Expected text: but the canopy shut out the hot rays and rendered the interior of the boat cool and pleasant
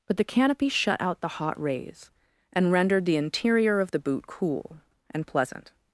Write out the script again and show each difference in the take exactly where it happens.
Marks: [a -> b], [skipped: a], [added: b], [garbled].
but the canopy shut out the hot rays and rendered the interior of the [boat -> boot] cool and pleasant